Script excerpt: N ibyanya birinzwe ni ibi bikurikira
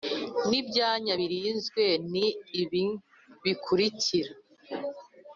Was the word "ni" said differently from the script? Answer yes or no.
no